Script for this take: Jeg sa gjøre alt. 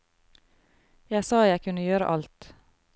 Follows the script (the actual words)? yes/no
no